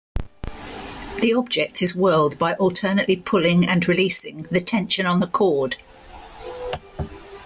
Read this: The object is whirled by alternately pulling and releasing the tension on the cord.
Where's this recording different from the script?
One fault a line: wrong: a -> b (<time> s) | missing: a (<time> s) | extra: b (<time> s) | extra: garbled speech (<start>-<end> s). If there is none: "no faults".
no faults